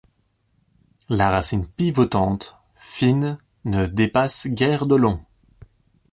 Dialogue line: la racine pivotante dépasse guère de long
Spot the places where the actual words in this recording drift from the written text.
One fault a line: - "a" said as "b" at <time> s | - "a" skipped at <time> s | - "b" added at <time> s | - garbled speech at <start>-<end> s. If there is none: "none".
- "fine ne" added at 2.7 s